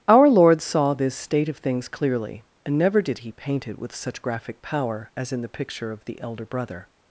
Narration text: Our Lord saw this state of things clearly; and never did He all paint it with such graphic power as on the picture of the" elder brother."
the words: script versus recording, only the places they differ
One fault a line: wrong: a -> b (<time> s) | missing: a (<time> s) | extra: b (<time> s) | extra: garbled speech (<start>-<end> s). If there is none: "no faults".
missing: all (3.3 s)
wrong: on -> in (5.3 s)